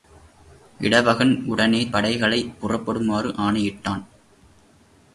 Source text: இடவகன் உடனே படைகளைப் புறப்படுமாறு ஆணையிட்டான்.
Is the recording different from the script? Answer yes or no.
no